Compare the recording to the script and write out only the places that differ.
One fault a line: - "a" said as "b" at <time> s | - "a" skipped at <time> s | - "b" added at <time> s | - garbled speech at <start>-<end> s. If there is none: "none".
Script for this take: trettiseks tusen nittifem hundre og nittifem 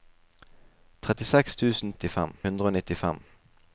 none